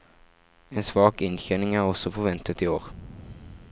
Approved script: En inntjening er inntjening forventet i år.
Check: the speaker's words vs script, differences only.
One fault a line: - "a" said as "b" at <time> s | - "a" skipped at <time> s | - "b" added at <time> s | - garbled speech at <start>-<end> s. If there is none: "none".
- "svak" added at 0.8 s
- "inntjening" said as "også" at 1.9 s